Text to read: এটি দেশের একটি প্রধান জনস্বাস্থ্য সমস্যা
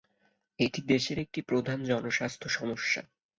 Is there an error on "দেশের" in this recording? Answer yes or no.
no